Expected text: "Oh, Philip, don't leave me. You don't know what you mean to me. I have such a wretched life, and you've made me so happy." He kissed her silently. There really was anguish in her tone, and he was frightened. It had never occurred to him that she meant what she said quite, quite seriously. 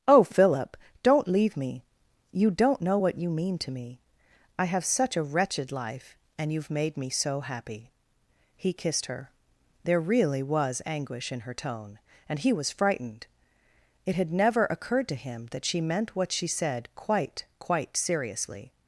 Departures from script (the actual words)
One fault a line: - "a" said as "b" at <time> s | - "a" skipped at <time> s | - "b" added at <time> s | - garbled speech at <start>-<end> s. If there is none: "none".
- "silently" skipped at 9.3 s